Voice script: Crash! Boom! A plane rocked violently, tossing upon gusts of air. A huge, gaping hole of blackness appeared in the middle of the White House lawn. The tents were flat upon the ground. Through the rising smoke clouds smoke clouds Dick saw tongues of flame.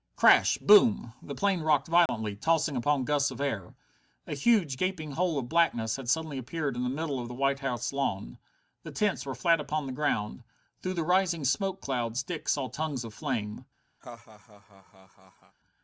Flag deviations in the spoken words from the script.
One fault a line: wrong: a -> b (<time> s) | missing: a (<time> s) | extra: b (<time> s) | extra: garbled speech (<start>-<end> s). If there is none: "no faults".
wrong: A -> The (1.2 s)
extra: had suddenly (6.0 s)
missing: smoke clouds (12.2 s)